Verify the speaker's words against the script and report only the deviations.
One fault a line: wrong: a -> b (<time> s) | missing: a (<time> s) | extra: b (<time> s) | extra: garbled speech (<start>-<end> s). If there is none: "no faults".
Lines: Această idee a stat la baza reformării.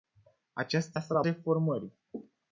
missing: idee (1.0 s)
missing: baza (1.2 s)